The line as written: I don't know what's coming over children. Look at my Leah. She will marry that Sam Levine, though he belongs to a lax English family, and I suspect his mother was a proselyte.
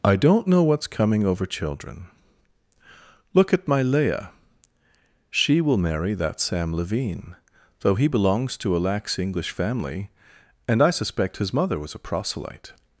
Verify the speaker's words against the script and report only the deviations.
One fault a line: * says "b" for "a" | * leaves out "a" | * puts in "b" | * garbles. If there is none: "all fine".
all fine